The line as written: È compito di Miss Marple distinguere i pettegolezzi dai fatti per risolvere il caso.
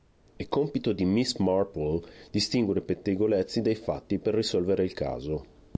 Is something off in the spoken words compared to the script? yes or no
no